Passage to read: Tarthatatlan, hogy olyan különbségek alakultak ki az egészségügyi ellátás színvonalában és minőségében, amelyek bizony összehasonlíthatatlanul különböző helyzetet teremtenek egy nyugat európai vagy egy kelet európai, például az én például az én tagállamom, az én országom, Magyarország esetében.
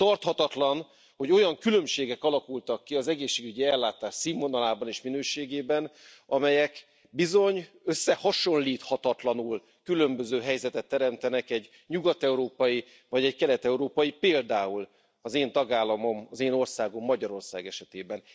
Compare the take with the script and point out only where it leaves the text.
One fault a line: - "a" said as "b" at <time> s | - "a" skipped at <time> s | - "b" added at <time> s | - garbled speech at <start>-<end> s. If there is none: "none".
- "például az én" skipped at 15.5 s